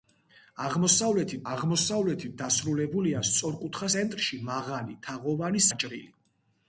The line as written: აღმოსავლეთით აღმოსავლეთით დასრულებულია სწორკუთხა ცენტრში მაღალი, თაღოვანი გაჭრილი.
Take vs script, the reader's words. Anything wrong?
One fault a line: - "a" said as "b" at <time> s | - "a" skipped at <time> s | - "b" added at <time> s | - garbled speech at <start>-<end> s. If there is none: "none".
none